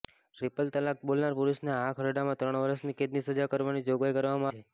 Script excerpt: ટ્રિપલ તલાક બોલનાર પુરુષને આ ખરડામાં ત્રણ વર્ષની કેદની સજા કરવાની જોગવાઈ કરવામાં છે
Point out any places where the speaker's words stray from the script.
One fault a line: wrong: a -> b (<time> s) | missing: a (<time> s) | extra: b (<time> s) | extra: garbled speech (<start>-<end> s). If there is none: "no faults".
no faults